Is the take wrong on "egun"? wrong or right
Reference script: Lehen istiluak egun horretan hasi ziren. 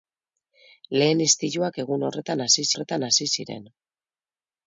right